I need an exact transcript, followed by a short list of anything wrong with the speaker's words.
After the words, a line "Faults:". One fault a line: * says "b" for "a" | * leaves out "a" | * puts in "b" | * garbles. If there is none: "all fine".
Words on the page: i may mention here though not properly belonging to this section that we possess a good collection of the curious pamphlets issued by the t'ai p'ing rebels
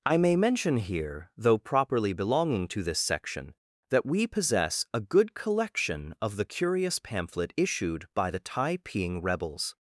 i may mention here though properly belonging to this section that we possess a good collection of the curious pamphlet issued by the t'ai p'ing rebels
Faults:
* leaves out "not"
* says "pamphlet" for "pamphlets"